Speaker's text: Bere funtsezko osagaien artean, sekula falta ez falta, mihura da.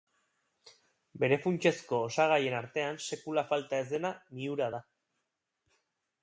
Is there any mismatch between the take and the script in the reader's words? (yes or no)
yes